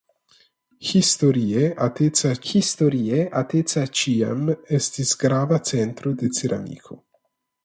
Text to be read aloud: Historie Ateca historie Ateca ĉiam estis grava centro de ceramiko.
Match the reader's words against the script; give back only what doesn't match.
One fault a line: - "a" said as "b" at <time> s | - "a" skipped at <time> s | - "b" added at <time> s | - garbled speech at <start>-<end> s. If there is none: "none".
none